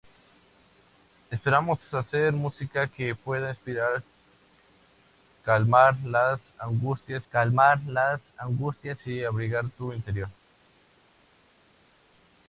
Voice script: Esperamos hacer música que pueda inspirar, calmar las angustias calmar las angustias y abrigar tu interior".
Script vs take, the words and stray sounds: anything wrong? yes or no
no